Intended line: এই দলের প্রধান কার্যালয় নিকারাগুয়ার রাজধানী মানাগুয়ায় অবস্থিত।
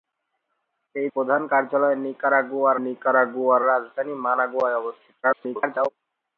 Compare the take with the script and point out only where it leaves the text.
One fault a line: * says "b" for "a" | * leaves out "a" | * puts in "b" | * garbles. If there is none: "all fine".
* leaves out "দলের"
* puts in "নিকারাগুয়ার"
* garbles